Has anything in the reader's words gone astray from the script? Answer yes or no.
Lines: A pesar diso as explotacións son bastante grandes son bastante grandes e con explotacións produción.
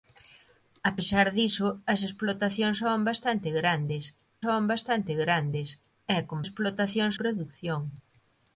no